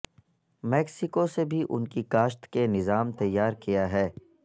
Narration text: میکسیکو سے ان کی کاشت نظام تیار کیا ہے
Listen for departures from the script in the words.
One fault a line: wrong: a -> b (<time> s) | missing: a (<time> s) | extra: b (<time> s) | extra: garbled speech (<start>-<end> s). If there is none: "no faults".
extra: بھی (1.5 s)
extra: کے (2.5 s)